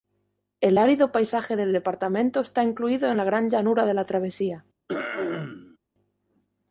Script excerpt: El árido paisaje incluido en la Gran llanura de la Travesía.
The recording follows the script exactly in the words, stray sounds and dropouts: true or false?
false